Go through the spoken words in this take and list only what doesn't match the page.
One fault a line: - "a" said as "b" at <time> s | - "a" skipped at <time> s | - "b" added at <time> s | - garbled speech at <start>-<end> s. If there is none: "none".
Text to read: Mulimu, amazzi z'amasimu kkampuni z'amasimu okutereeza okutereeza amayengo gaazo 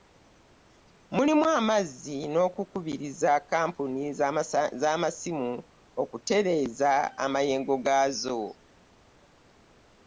- "z'amasimu" said as "n'okukubiriza" at 2.3 s
- "okutereeza" skipped at 6.9 s